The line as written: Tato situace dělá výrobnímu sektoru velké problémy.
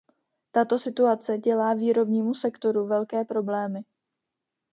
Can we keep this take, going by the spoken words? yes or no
yes